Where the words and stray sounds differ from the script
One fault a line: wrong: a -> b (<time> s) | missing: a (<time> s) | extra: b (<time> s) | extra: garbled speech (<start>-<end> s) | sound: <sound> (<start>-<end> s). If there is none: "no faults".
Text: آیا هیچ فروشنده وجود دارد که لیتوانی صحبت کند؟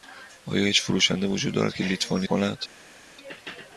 missing: صحبت (2.3 s)